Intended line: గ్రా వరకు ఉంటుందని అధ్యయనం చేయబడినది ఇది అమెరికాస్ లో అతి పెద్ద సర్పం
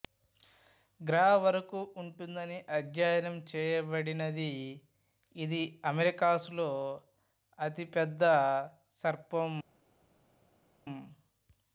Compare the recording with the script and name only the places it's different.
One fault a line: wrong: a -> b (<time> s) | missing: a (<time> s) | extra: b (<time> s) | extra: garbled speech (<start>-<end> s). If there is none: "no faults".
no faults